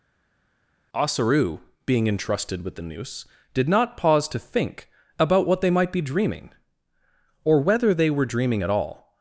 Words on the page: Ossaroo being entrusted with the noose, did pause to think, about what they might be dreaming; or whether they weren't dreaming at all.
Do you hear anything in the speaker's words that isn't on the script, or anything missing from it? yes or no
yes